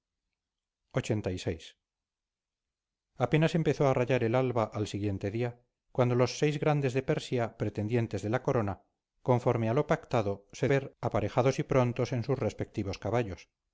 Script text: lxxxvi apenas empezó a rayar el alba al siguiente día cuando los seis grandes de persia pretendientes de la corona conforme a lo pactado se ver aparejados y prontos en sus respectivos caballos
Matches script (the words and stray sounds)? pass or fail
pass